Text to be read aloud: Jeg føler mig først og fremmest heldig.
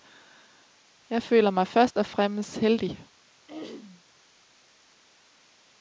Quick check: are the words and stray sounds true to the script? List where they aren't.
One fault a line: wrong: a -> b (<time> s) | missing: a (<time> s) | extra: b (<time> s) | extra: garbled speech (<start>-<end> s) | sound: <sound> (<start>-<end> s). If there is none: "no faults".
sound: throat clearing (3.5-4.0 s)